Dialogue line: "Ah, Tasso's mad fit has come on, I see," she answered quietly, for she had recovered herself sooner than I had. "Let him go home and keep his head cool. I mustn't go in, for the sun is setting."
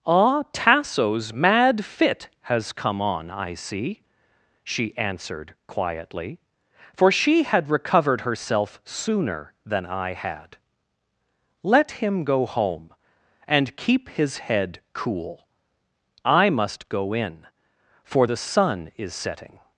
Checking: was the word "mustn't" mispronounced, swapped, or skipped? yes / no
yes